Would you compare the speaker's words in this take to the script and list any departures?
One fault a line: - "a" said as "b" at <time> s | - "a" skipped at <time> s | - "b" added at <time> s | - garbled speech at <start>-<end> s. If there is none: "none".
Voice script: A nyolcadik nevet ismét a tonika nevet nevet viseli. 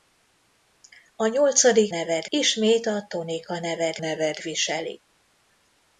none